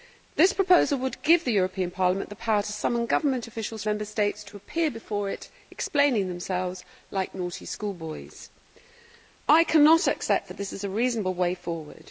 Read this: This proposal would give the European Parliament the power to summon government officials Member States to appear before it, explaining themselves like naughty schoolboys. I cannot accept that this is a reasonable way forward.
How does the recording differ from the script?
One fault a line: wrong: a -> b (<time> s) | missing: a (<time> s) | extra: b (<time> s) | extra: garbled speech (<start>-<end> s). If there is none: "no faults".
no faults